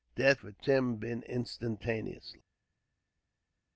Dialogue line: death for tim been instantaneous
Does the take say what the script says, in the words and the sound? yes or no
yes